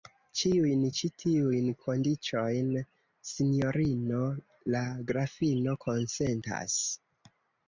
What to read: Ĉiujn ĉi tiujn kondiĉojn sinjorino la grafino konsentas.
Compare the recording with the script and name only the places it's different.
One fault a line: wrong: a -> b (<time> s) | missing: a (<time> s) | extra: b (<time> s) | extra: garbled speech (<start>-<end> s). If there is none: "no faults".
no faults